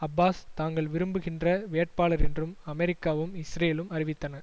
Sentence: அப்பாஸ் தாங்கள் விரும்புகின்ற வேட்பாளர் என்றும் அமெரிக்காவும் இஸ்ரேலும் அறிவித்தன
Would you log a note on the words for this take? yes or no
no